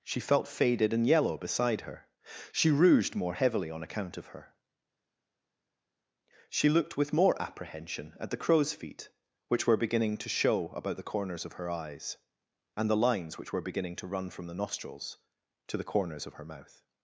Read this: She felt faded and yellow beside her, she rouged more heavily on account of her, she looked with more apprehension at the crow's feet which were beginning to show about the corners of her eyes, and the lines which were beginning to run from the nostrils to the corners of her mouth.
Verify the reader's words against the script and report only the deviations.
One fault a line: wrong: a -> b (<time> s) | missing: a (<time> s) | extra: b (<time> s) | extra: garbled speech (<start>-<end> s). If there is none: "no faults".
no faults